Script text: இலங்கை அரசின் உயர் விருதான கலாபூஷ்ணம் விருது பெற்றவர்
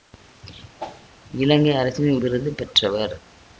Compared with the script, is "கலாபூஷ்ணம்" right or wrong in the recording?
wrong